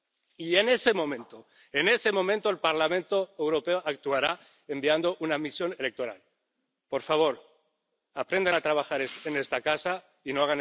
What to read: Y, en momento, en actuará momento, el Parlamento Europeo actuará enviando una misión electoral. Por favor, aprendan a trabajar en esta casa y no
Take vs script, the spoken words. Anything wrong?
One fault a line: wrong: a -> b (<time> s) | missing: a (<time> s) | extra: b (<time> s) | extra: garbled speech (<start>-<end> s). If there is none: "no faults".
extra: ese (0.7 s)
wrong: actuará -> ese (1.9 s)